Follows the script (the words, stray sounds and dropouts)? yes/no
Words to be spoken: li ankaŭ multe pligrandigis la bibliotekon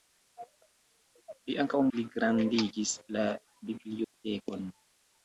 no